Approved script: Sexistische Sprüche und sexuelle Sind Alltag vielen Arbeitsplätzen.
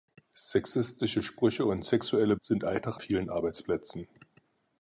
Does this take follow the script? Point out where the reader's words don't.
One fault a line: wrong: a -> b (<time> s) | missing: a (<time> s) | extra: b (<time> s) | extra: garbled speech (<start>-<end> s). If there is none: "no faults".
no faults